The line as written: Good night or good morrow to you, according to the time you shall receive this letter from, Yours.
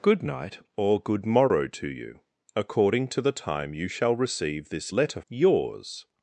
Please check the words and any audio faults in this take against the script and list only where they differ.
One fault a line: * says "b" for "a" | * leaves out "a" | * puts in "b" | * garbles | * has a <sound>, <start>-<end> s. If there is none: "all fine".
* leaves out "from"